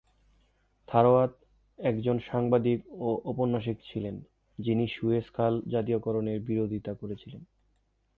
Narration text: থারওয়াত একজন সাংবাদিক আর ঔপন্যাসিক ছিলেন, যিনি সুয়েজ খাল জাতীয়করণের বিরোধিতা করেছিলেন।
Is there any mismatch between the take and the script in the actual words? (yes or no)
yes